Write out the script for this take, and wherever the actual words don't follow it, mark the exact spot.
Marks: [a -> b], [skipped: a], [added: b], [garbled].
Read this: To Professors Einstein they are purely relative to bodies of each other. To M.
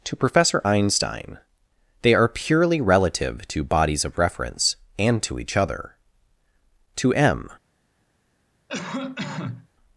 To [Professors -> Professor] Einstein they are purely relative to bodies of [added: reference and to] each other. To M.